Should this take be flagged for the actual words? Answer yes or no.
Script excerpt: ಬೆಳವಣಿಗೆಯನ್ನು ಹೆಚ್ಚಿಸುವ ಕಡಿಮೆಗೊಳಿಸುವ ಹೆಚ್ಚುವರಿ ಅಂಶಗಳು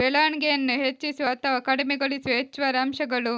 yes